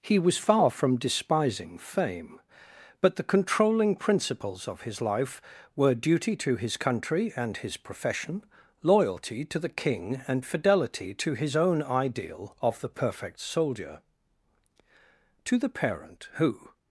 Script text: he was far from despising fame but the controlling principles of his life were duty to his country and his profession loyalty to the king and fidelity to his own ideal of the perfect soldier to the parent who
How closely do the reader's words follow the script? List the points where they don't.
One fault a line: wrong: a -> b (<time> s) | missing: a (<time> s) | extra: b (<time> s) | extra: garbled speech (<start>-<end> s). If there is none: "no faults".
no faults